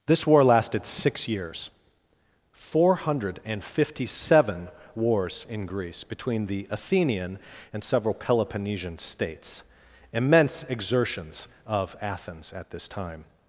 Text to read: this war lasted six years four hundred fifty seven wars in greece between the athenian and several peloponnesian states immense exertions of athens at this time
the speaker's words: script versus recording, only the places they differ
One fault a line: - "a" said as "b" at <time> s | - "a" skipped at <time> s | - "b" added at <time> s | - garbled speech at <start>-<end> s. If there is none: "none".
none